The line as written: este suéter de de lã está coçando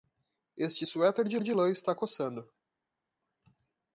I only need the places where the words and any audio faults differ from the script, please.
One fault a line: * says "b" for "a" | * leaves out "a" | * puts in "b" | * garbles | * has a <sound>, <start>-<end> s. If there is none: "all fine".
all fine